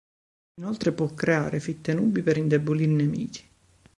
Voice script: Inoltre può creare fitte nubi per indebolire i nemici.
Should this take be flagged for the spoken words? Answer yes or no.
no